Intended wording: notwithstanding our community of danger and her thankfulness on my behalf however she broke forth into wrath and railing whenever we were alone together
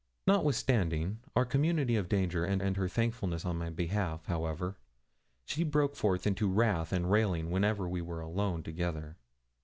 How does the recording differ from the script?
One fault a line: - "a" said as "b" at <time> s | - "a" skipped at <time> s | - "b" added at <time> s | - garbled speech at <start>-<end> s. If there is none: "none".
- "and" added at 2.6 s